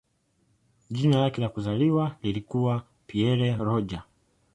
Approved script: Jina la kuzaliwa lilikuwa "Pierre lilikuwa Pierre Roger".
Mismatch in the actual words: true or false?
true